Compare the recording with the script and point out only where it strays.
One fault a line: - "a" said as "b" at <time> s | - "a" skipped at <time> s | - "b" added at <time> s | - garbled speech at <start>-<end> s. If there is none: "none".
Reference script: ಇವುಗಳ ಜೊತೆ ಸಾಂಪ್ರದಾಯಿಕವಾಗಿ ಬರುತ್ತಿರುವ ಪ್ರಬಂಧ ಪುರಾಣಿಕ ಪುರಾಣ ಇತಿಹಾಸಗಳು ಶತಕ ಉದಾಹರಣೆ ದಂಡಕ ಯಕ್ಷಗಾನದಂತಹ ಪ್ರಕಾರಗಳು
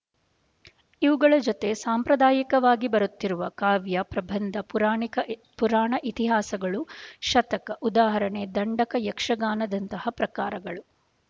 - "ಕಾವ್ಯ" added at 3.5 s